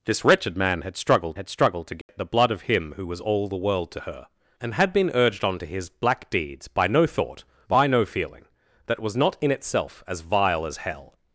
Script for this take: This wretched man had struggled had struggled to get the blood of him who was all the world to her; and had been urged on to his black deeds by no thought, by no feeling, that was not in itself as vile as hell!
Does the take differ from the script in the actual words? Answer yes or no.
no